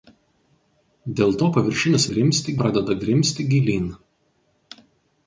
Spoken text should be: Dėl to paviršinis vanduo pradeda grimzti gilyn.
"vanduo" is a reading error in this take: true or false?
true